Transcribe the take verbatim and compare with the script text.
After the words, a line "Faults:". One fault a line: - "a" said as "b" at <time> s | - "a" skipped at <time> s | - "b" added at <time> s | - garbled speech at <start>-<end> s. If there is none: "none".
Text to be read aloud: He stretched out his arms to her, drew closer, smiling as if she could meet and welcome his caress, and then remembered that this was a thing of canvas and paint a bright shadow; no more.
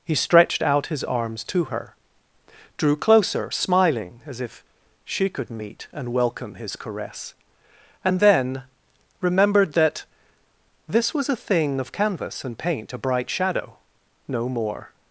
He stretched out his arms to her, drew closer, smiling as if she could meet and welcome his caress, and then remembered that this was a thing of canvas and paint a bright shadow; no more.
Faults:
none